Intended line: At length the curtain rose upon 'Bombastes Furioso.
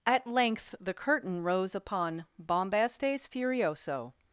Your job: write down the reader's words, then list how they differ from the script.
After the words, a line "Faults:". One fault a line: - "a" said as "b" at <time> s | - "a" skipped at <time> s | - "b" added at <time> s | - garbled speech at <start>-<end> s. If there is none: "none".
At length the curtain rose upon 'Bombastes Furioso.
Faults:
none